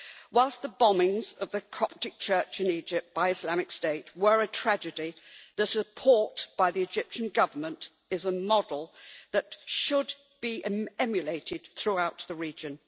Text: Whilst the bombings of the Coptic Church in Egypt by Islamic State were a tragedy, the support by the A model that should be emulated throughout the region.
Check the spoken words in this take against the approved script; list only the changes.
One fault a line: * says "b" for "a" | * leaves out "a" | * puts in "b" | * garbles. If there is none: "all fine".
* puts in "Egyptian Government is"